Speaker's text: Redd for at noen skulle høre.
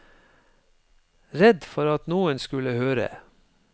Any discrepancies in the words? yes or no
no